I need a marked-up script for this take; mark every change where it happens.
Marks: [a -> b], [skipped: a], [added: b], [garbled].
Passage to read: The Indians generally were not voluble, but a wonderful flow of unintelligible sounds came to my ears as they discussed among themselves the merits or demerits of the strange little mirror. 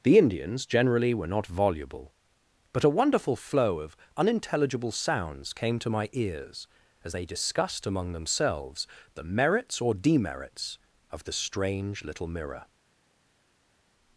The Indians generally were not voluble, but a wonderful flow of unintelligible sounds came to my ears as they discussed among themselves the merits or demerits of the strange little mirror.